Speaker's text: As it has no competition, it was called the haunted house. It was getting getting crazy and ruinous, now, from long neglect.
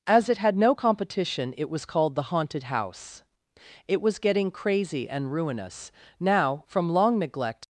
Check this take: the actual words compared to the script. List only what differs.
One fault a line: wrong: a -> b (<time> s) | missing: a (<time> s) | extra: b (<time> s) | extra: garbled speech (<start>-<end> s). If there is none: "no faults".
wrong: has -> had (0.4 s)
missing: getting (4.5 s)